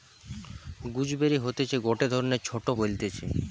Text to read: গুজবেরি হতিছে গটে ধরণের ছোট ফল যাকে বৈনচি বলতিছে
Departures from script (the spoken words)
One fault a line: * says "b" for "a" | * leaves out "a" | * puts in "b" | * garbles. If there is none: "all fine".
* leaves out "ফল যাকে বৈনচি"